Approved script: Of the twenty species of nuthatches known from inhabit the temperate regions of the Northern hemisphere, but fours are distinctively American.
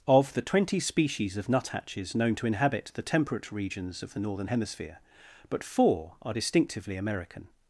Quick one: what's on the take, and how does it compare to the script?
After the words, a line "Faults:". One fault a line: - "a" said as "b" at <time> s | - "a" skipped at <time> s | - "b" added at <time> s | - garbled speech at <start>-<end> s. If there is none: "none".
Of the twenty species of nuthatches known to inhabit the temperate regions of the Northern hemisphere, but four are distinctively American.
Faults:
- "from" said as "to" at 2.4 s
- "fours" said as "four" at 5.6 s